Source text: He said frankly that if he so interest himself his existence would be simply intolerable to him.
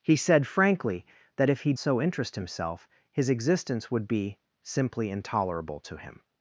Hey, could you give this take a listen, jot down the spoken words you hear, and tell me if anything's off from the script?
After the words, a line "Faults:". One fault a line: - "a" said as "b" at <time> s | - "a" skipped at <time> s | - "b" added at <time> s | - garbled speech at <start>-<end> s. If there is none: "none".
He said frankly that if he so interest himself his existence would be simply intolerable to him.
Faults:
none